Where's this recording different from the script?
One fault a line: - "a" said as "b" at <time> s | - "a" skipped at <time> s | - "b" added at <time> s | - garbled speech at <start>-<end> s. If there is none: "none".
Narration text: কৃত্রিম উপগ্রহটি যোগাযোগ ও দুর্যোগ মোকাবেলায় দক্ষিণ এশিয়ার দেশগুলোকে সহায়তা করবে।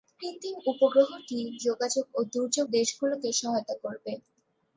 - "মোকাবেলায় দক্ষিণ এশিয়ার" skipped at 2.7 s